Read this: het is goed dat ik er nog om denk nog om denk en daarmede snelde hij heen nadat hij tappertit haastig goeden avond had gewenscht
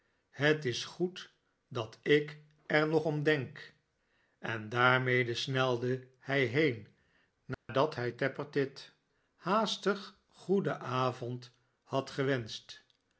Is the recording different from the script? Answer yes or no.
yes